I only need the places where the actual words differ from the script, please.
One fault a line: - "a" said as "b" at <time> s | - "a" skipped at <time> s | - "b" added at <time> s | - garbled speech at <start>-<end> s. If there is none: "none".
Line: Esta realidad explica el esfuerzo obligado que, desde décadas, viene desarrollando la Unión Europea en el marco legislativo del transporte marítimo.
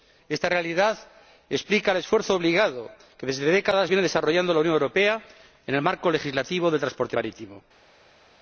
none